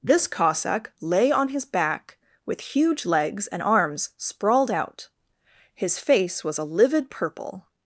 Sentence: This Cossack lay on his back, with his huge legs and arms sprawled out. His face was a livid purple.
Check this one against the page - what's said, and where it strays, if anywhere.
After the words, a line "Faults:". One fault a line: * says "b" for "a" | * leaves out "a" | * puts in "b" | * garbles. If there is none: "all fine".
This Cossack lay on his back, with huge legs and arms sprawled out. His face was a livid purple.
Faults:
* leaves out "his"